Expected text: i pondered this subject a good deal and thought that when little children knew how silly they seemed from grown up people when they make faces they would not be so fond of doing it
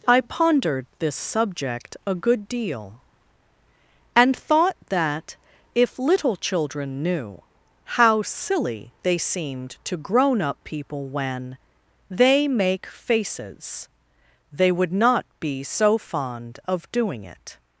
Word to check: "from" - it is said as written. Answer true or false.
false